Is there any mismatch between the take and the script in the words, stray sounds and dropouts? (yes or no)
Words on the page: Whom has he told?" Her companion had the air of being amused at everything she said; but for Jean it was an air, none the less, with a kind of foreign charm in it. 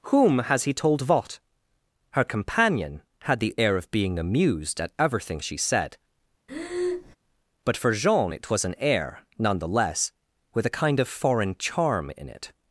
yes